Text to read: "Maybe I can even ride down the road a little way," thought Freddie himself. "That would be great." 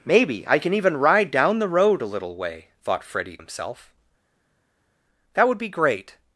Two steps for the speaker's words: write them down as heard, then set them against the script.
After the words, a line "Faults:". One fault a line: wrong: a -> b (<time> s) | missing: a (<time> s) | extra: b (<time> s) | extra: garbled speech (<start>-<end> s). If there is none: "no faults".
"Maybe I can even ride down the road a little way," thought Freddie himself. "That would be great."
Faults:
no faults